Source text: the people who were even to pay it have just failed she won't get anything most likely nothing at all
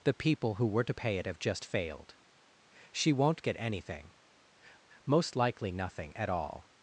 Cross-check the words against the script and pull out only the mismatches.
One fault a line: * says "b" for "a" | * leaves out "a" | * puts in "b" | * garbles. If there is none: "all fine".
* leaves out "even"